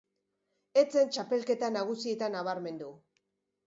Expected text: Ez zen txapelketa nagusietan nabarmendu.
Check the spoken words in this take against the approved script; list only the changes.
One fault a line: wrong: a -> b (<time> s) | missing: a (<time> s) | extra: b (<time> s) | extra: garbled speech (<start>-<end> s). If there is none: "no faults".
no faults